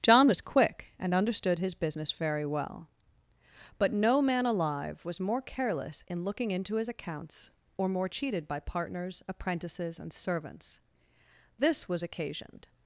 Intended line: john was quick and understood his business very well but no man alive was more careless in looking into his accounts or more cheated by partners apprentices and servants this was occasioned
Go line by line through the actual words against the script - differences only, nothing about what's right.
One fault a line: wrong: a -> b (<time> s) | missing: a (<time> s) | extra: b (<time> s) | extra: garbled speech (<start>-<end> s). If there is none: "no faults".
no faults